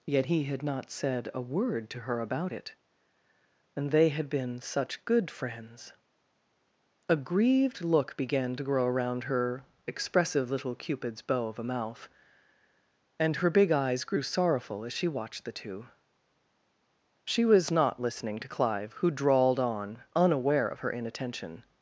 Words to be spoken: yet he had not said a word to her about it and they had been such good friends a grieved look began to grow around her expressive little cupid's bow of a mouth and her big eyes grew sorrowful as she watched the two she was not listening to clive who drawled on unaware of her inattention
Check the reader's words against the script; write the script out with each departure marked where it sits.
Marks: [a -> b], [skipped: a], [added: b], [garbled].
yet he had not said a word to her about it and they had been such good friends a grieved look began to grow around her expressive little cupid's bow of a mouth and her big eyes grew sorrowful as she watched the two she was not listening to clive who drawled on unaware of her inattention